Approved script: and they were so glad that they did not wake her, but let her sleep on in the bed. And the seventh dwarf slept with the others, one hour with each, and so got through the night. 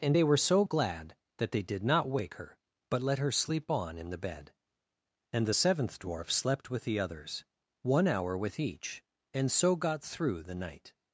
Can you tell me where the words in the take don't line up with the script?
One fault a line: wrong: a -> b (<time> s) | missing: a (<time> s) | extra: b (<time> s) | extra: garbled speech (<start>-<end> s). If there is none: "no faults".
no faults